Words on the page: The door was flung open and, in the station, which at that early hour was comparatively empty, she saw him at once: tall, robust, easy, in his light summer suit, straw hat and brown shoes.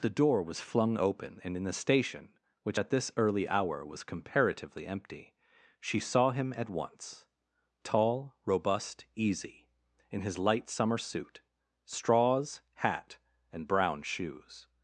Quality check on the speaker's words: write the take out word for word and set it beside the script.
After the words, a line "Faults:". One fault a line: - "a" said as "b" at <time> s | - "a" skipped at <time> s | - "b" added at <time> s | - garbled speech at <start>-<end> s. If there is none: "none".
The door was flung open and, in the station, which at this early hour was comparatively empty, she saw him at once: tall, robust, easy, in his light summer suit, straws hat and brown shoes.
Faults:
- "that" said as "this" at 2.9 s
- "straw" said as "straws" at 11.8 s